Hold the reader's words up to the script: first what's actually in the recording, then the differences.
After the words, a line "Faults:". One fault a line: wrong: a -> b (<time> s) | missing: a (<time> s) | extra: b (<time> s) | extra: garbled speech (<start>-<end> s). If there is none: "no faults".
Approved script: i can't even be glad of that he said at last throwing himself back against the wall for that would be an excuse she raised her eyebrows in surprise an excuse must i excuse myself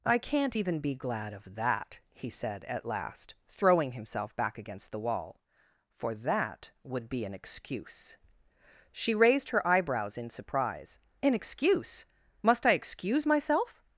i can't even be glad of that he said at last throwing himself back against the wall for that would be an excuse she raised her eyebrows in surprise an excuse must i excuse myself
Faults:
no faults